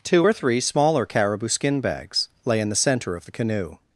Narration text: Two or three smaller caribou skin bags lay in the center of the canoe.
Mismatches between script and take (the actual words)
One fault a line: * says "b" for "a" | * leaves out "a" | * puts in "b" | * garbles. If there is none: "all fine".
all fine